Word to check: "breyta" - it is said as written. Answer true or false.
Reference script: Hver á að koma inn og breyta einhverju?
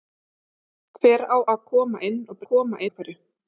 false